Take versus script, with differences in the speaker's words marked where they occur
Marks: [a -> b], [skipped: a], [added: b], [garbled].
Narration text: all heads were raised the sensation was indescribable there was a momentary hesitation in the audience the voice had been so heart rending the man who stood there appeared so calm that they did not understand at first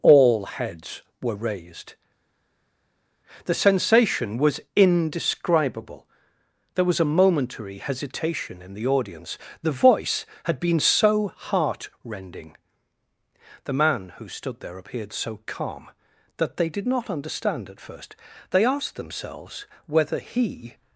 all heads were raised the sensation was indescribable there was a momentary hesitation in the audience the voice had been so heart rending the man who stood there appeared so calm that they did not understand at first [added: they asked themselves whether he]